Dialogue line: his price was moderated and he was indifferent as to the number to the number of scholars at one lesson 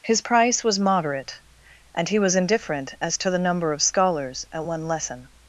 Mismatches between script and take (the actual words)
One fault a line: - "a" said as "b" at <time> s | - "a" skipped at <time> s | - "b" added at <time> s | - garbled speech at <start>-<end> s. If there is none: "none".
- "moderated" said as "moderate" at 0.8 s
- "to the number" skipped at 3.7 s